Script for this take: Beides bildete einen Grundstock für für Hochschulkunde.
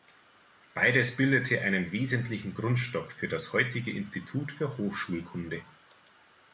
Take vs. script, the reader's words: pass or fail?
fail